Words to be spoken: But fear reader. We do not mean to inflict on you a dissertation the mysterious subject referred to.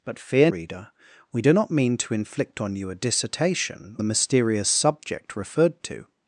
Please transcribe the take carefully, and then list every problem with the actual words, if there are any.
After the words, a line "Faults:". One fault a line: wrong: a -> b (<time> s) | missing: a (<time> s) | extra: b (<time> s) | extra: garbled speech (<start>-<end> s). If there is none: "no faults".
But fear reader. We do not mean to inflict on you a dissertation the mysterious subject referred to.
Faults:
no faults